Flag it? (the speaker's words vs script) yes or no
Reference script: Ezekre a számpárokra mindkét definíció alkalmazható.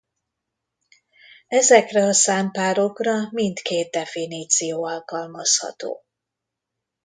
no